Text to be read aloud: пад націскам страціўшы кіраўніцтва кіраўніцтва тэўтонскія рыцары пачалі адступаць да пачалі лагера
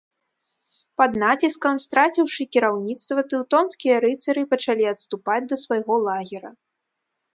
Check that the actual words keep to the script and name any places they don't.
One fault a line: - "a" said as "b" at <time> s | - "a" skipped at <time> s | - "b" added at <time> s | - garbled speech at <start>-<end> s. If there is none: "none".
- "кіраўніцтва" skipped at 3.2 s
- "пачалі" said as "свайго" at 5.7 s